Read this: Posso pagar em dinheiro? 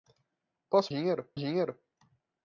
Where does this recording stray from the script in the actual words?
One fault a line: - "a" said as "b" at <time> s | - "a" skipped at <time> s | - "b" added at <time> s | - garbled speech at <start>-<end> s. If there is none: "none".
- "pagar" said as "dinheiro" at 0.9 s